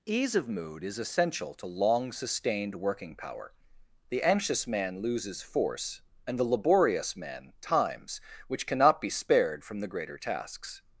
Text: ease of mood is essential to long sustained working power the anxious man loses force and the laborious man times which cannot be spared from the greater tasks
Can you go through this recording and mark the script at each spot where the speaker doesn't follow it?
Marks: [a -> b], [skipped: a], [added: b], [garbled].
ease of mood is essential to long sustained working power the anxious man loses force and the laborious man times which cannot be spared from the greater tasks